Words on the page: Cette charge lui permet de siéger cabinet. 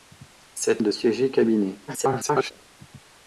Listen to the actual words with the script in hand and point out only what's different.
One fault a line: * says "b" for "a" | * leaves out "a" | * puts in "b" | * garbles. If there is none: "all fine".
* leaves out "charge lui permet"
* garbles